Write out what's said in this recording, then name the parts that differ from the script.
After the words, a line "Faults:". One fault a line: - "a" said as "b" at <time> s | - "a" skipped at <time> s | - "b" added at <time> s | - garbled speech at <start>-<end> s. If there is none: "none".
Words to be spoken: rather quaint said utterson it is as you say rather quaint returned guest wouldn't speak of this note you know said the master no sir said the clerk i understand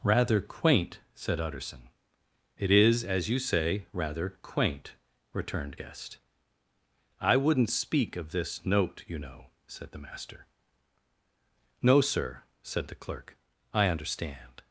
rather quaint said utterson it is as you say rather quaint returned guest i wouldn't speak of this note you know said the master no sir said the clerk i understand
Faults:
- "i" added at 7.2 s